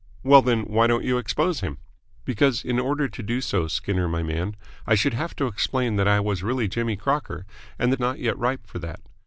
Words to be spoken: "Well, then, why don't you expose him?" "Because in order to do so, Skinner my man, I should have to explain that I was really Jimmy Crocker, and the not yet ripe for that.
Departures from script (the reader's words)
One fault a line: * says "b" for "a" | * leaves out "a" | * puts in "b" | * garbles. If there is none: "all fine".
all fine